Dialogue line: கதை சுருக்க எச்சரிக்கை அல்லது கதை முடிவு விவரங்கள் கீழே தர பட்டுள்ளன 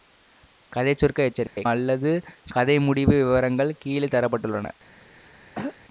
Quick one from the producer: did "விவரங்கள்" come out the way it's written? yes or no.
yes